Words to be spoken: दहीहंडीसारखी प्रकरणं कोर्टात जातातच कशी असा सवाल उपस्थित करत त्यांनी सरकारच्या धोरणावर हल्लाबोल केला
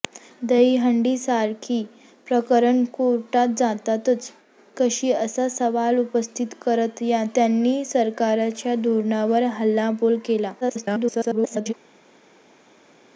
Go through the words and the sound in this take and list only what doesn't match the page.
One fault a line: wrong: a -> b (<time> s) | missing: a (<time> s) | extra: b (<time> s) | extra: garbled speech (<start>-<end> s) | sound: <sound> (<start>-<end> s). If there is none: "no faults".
extra: garbled speech (10.6-11.7 s)